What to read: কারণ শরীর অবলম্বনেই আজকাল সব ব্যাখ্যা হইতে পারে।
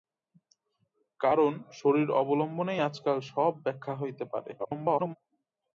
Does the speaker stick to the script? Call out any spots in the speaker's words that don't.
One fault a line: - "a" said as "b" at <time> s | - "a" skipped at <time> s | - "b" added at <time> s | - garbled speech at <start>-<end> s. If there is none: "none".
- garbled speech at 4.6-5.2 s